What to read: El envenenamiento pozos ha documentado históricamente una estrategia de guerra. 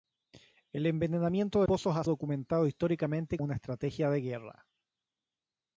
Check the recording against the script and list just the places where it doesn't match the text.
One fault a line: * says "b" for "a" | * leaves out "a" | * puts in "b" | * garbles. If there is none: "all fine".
all fine